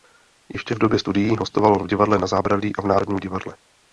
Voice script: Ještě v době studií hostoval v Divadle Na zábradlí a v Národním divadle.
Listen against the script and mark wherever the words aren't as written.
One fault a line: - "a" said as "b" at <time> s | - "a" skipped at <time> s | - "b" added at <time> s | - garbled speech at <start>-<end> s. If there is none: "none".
none